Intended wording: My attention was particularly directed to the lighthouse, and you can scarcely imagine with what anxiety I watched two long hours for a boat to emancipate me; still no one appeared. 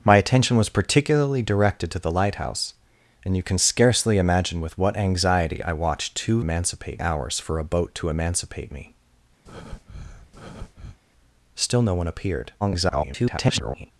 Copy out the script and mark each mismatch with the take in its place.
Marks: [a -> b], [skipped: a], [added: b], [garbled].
My attention was particularly directed to the lighthouse, and you can scarcely imagine with what anxiety I watched two [long -> emancipate] hours for a boat to emancipate me; still no one appeared. [garbled]